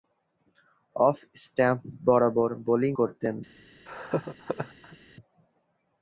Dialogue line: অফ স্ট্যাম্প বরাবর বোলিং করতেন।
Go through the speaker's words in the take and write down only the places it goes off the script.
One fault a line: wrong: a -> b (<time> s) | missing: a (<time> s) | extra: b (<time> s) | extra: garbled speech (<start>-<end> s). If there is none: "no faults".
no faults